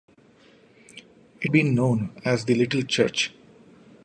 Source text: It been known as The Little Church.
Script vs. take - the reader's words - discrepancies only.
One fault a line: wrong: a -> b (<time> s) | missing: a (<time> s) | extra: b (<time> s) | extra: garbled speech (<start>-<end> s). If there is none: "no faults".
no faults